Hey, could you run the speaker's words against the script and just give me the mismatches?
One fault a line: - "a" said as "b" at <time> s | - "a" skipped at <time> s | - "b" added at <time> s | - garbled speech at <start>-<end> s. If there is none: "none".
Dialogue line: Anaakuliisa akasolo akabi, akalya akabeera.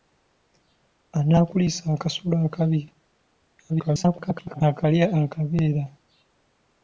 - garbled speech at 3.7-4.6 s